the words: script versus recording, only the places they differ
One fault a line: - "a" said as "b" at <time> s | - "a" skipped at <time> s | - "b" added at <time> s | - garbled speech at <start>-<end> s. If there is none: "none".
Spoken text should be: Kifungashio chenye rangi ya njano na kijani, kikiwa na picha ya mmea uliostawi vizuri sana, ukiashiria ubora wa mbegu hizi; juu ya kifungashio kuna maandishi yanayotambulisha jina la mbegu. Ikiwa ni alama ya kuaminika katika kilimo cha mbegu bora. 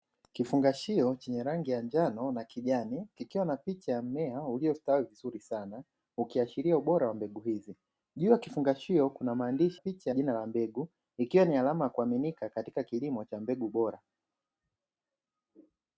- "yanayotambulisha" said as "picha" at 9.8 s